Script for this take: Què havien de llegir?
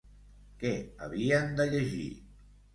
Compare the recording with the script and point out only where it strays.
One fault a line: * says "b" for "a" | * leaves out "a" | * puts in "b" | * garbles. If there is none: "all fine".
all fine